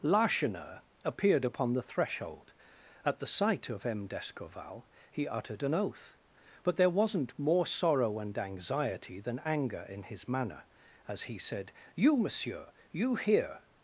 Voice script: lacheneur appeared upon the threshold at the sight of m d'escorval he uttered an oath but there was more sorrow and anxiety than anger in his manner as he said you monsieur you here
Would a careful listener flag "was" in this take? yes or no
yes